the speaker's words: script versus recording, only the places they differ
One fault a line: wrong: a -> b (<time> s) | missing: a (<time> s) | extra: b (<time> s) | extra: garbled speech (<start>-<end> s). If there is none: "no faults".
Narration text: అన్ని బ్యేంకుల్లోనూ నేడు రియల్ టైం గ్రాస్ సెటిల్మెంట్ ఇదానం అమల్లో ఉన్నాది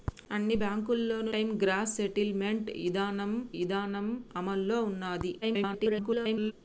missing: నేడు రియల్ (1.3 s)
extra: ఇదానం (3.6 s)
extra: garbled speech (5.4-6.5 s)